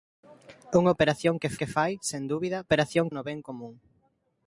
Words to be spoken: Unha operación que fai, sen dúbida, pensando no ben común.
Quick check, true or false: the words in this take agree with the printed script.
false